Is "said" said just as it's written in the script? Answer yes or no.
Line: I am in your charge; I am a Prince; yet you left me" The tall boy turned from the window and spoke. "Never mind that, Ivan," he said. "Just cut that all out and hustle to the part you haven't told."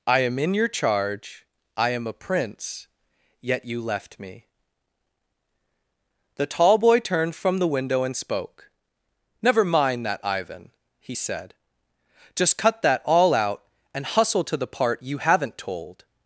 yes